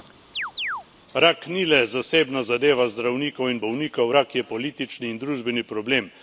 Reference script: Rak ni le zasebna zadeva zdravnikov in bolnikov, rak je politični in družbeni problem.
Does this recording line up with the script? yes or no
yes